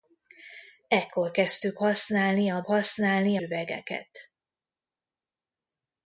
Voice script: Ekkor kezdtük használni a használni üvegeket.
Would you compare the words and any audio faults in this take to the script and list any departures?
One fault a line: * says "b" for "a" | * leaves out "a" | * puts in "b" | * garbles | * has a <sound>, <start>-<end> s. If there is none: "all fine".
all fine